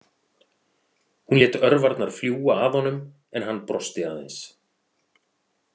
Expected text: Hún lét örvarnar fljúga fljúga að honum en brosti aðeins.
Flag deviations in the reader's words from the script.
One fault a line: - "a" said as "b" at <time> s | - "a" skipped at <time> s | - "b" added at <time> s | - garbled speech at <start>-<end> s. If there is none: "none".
- "fljúga" skipped at 2.6 s
- "hann" added at 3.5 s